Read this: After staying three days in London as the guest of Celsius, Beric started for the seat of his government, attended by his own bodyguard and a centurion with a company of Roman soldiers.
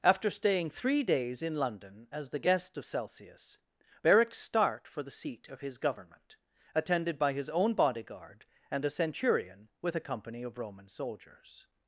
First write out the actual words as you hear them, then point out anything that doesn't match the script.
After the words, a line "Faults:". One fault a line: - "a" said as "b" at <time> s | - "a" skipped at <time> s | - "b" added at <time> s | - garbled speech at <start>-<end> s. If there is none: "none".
After staying three days in London as the guest of Celsius, Beric start for the seat of his government, attended by his own bodyguard and a centurion with a company of Roman soldiers.
Faults:
- "started" said as "start" at 4.3 s